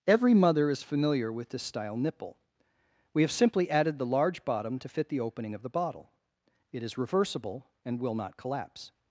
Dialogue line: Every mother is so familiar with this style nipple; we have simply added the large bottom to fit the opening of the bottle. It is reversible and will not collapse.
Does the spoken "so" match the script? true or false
false